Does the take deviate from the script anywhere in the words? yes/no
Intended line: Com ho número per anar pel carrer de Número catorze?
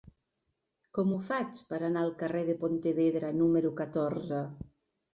yes